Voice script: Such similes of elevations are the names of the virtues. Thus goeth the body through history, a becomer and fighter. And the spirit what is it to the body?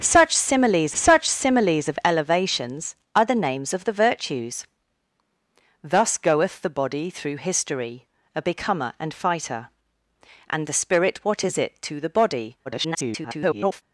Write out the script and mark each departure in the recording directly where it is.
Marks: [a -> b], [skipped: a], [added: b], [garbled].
Such similes [added: such similes] of elevations are the names of the virtues. Thus goeth the body through history, a becomer and fighter. And the spirit what is it to the body? [garbled]